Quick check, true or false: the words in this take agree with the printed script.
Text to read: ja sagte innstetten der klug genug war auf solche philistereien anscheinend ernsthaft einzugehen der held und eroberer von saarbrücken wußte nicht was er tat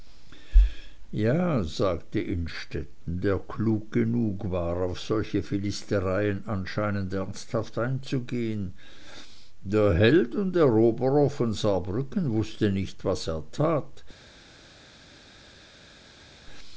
true